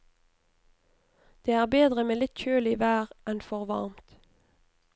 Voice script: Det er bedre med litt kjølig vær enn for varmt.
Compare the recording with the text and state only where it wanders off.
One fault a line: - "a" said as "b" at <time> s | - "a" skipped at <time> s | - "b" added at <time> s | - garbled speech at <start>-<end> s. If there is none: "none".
none